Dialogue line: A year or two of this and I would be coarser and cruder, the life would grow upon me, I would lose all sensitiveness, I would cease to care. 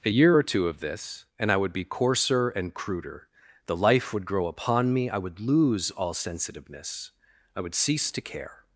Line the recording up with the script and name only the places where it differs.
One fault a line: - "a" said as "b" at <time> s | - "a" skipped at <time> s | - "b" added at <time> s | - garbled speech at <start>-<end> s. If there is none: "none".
none